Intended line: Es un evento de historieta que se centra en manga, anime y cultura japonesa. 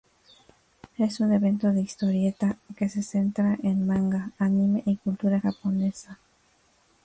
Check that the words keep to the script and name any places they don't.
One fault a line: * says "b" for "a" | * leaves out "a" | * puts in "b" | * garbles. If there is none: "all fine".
all fine